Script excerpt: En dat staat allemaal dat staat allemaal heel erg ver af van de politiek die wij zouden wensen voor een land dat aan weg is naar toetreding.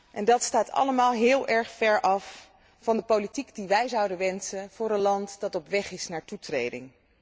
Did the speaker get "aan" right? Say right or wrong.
wrong